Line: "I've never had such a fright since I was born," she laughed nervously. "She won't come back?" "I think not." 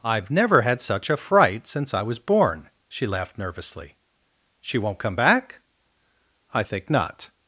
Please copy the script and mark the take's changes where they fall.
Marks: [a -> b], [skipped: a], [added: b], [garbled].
"I've never had such a fright since I was born," she laughed nervously. "She won't come back?" "I think not."